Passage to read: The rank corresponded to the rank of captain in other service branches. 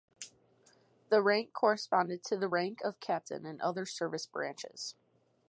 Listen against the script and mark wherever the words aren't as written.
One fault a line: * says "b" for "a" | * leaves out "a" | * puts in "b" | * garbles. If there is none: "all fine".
all fine